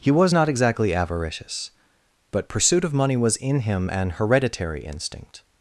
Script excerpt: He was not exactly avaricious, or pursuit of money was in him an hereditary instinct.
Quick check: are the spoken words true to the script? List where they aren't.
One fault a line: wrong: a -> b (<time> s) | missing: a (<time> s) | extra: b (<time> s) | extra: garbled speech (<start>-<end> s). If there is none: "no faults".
wrong: or -> but (2.3 s)